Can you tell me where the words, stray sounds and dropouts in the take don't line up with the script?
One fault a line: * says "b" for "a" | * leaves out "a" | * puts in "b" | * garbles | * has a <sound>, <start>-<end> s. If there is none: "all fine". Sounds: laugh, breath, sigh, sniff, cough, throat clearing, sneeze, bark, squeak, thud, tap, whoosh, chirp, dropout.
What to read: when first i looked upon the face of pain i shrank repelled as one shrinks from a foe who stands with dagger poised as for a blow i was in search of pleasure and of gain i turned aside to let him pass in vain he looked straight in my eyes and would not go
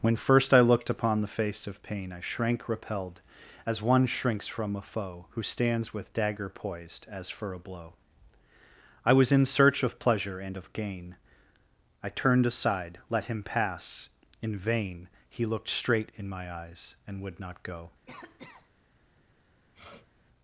* leaves out "to"
* has a cough, 18.1-18.7 s
* has a sniff, 19.7-20.1 s